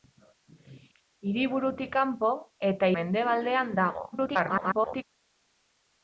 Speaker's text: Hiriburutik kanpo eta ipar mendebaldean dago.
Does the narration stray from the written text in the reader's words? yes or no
yes